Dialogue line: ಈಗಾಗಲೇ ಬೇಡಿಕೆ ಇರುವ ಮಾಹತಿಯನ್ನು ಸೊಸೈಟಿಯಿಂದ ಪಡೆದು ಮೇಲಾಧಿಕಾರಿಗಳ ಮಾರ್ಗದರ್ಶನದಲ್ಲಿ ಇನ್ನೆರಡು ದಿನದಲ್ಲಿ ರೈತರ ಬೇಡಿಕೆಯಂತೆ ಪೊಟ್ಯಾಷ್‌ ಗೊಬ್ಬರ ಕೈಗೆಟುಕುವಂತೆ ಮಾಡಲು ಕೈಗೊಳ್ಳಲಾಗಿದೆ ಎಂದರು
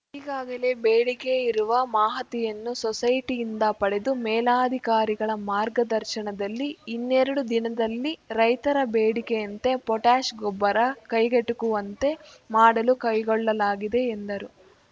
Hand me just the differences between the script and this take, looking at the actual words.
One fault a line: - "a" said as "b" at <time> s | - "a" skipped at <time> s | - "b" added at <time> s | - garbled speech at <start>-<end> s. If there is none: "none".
none